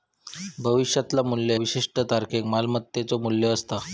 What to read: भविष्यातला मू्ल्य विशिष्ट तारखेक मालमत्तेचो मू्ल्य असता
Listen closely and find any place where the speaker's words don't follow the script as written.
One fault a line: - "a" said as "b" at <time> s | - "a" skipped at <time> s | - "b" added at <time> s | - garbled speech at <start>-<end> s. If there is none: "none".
none